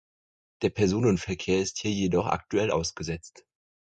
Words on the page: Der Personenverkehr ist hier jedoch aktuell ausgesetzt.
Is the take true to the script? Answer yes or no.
yes